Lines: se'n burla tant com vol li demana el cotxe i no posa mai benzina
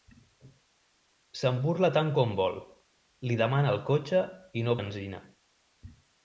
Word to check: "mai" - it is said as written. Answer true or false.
false